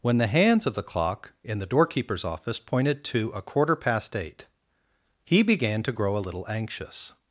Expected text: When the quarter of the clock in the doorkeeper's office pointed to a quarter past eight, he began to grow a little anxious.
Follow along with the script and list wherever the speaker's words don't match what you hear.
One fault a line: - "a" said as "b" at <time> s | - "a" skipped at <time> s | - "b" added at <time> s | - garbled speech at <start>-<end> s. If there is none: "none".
- "quarter" said as "hands" at 0.3 s